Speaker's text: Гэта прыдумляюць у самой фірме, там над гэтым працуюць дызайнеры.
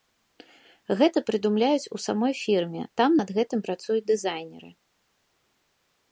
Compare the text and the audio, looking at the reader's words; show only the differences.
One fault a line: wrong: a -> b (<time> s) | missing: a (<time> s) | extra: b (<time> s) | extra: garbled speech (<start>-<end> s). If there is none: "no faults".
no faults